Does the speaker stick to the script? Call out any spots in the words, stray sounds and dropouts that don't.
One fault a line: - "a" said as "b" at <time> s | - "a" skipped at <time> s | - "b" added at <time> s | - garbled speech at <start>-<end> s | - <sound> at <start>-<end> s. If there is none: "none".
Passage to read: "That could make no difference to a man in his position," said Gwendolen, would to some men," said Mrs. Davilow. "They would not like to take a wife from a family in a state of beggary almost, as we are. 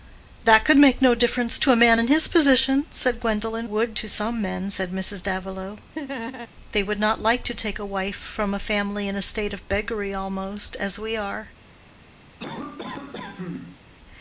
- laugh at 5.9-6.5 s
- cough at 12.4-13.8 s